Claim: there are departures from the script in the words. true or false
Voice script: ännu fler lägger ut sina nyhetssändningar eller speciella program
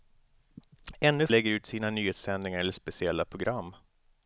true